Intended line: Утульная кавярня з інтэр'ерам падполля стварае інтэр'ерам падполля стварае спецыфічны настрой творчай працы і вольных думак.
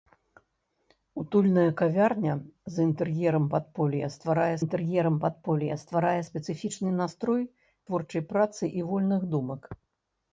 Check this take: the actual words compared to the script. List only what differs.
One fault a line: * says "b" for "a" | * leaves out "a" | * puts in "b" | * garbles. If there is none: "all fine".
all fine